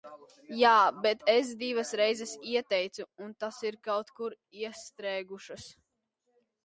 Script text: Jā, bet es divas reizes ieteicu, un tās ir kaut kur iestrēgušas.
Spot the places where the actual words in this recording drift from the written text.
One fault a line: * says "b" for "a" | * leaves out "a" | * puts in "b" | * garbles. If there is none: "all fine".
all fine